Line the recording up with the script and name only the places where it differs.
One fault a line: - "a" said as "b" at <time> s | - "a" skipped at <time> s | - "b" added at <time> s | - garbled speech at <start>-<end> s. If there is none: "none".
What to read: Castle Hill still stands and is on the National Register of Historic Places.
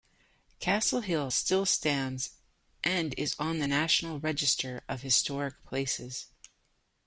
none